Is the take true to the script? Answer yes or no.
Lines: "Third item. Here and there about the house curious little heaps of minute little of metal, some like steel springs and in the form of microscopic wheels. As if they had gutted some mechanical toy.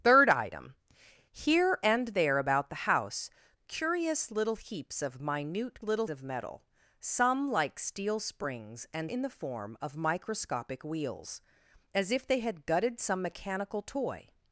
yes